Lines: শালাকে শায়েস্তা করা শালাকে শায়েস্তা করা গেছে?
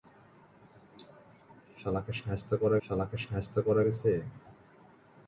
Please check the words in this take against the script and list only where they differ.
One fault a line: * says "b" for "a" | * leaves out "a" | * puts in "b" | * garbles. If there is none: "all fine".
all fine